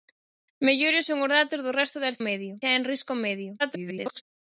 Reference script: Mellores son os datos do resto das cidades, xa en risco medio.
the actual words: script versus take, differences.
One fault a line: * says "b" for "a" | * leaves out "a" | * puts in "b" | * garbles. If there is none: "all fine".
* says "medio" for "cidades"
* garbles